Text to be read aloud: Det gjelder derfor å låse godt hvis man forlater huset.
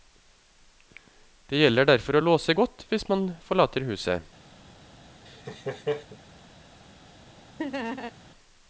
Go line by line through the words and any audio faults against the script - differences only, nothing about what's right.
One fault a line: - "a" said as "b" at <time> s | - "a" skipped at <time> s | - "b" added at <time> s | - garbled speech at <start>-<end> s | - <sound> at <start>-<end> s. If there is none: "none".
- laugh at 5.3-6.2 s
- laugh at 7.6-8.1 s